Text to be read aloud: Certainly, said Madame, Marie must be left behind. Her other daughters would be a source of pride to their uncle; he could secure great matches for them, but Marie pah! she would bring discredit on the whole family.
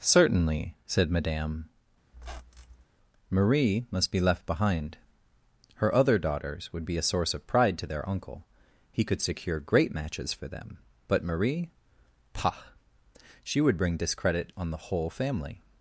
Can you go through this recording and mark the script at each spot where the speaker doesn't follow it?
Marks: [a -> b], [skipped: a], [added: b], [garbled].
Certainly, said Madame, Marie must be left behind. Her other daughters would be a source of pride to their uncle; he could secure great matches for them, but Marie pah! she would bring discredit on the whole family.